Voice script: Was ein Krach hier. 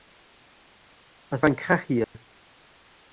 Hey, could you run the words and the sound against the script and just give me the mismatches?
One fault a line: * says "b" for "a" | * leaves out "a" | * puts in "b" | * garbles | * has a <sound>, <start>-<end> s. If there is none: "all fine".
* has a dropout, 2.0-2.1 s